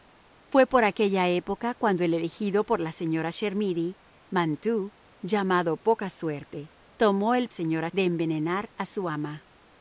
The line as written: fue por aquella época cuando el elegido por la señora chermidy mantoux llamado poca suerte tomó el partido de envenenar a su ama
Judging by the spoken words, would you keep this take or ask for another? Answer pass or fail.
fail